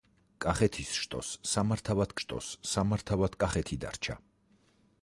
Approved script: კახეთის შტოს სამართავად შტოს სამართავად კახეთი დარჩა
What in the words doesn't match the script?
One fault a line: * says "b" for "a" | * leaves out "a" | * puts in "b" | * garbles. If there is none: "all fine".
all fine